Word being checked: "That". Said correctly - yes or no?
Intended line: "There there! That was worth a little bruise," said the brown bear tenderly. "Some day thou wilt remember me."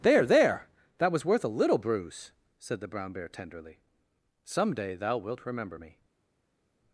yes